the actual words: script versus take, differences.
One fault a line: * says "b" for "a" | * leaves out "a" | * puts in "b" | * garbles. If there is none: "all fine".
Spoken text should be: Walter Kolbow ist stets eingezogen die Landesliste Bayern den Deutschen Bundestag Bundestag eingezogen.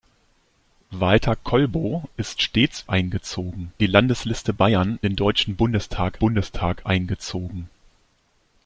all fine